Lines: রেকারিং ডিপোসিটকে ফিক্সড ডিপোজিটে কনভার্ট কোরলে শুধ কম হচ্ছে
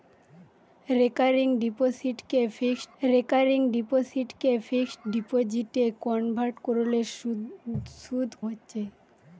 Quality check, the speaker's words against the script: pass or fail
fail